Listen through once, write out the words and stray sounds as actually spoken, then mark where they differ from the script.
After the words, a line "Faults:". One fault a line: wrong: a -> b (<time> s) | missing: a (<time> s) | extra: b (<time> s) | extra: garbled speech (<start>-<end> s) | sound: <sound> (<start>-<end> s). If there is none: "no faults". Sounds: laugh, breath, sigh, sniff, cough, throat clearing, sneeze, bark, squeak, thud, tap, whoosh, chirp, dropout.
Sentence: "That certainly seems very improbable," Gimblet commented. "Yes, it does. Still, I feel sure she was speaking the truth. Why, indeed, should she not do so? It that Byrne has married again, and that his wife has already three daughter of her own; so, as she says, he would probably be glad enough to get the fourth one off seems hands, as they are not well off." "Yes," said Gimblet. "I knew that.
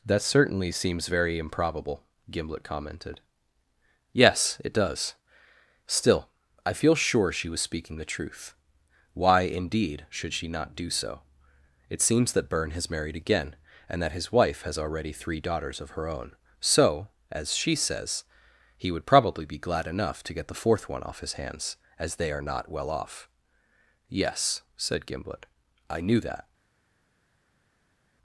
"That certainly seems very improbable," Gimblet commented. "Yes, it does. Still, I feel sure she was speaking the truth. Why, indeed, should she not do so? It seems that Byrne has married again, and that his wife has already three daughters of her own; so, as she says, he would probably be glad enough to get the fourth one off his hands, as they are not well off." "Yes," said Gimblet. "I knew that.
Faults:
extra: seems (12.0 s)
wrong: daughter -> daughters (15.4 s)
wrong: seems -> his (21.2 s)